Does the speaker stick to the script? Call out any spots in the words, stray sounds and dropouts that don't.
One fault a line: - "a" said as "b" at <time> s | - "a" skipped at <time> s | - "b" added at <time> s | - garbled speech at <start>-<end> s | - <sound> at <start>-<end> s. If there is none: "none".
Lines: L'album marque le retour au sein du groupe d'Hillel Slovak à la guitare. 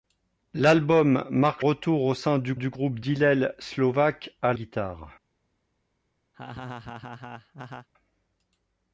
- "le" skipped at 1.6 s
- "du" added at 2.5 s
- "la" skipped at 4.5 s
- laugh at 6.3-7.9 s